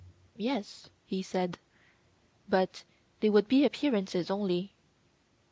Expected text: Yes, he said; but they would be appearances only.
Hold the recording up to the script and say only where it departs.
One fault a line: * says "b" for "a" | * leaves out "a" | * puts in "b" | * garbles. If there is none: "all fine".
all fine